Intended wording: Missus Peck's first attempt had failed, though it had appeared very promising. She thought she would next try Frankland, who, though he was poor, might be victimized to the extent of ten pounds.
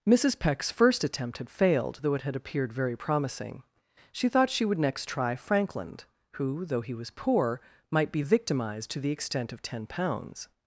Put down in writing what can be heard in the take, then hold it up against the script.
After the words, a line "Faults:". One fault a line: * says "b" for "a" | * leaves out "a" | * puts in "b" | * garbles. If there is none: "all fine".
Missus Peck's first attempt had failed, though it had appeared very promising. She thought she would next try Frankland, who, though he was poor, might be victimized to the extent of ten pounds.
Faults:
all fine